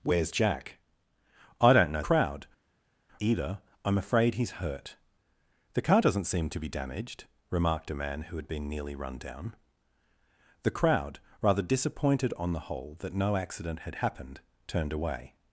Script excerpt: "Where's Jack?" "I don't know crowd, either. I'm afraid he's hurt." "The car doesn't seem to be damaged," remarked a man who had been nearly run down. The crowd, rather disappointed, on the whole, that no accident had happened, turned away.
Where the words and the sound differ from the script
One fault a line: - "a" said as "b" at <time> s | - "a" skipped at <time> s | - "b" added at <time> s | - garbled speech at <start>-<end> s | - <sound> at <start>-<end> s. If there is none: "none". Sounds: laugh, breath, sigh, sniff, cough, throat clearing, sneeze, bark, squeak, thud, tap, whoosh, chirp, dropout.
none